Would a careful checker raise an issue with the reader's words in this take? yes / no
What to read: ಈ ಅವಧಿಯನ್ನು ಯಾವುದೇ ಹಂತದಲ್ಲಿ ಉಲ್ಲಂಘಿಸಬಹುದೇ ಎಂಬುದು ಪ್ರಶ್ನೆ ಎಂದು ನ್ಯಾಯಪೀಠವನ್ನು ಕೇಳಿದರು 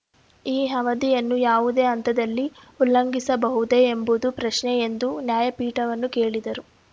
no